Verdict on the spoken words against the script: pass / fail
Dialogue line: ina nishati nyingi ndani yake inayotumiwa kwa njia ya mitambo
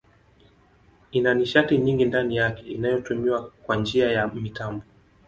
pass